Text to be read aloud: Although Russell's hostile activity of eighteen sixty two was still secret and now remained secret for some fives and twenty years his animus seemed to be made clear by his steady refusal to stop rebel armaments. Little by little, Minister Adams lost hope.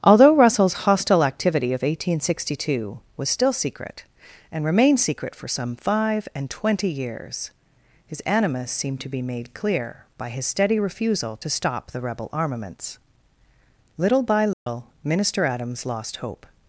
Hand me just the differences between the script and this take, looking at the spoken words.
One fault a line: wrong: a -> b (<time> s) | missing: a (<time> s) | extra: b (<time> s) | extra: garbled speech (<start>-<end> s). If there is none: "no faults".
missing: now (4.6 s)
wrong: fives -> five (5.7 s)
extra: the (11.9 s)